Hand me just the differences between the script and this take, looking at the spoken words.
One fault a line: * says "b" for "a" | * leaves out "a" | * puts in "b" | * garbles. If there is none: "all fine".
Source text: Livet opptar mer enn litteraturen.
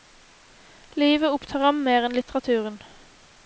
* puts in "ham"